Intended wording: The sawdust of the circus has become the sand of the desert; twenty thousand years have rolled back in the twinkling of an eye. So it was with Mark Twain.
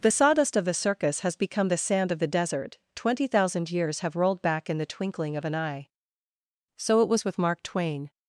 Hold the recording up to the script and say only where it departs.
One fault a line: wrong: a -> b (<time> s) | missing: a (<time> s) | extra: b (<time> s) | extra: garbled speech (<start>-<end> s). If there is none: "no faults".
no faults